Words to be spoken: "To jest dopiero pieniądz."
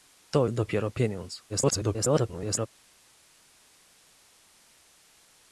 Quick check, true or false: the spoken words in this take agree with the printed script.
false